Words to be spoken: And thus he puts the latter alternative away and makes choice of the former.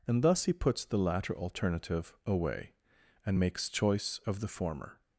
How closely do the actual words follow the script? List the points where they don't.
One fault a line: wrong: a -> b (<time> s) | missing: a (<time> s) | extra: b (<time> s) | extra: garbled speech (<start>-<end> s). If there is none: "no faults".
no faults